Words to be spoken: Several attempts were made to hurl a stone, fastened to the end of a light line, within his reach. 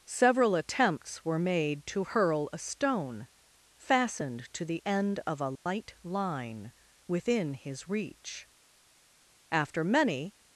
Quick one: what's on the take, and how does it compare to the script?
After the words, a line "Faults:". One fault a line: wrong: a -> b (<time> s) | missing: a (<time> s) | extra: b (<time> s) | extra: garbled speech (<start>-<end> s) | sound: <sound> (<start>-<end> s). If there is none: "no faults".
Several attempts were made to hurl a stone, fastened to the end of a light line, within his reach. After many
Faults:
sound: dropout (5.6-5.7 s)
extra: After many (9.5 s)